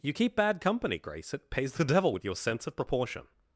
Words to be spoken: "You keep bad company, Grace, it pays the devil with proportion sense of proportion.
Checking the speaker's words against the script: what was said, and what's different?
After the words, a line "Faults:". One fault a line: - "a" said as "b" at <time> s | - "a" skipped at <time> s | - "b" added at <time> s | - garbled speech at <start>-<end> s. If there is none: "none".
"You keep bad company, Grace, it pays the devil with your sense of proportion.
Faults:
- "proportion" said as "your" at 2.2 s